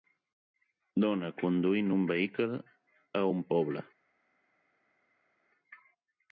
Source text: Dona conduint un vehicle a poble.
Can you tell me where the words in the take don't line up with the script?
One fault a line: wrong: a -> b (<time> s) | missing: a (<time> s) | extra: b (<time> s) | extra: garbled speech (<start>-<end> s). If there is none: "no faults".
extra: un (3.3 s)